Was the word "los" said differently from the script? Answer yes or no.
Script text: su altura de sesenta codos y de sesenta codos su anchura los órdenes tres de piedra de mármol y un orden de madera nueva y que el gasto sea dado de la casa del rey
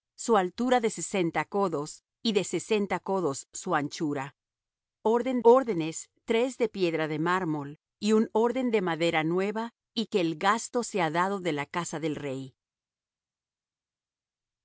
yes